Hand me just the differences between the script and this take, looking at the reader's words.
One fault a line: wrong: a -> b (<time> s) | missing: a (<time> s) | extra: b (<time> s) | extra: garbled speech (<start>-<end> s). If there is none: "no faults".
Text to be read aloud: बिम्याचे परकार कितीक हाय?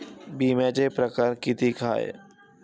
no faults